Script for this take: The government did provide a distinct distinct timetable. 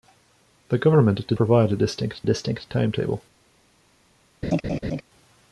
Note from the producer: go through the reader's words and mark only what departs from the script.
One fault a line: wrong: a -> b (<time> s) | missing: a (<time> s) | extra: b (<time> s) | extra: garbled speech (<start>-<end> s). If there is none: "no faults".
no faults